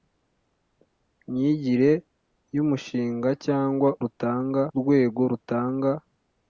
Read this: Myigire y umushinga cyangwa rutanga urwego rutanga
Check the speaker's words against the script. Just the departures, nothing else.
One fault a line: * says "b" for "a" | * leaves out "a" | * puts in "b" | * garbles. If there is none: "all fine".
all fine